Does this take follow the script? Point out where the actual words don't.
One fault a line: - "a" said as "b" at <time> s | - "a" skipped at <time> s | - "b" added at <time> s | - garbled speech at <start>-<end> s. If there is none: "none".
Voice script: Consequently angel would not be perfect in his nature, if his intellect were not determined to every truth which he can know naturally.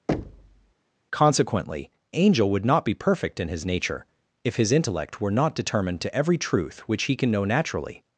none